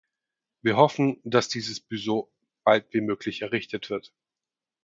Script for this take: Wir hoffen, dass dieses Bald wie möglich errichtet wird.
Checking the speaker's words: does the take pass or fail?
fail